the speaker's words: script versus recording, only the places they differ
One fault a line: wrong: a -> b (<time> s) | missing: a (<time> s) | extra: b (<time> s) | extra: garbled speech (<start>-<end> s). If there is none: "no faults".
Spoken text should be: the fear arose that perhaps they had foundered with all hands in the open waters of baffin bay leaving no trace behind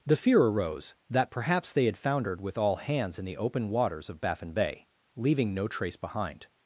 no faults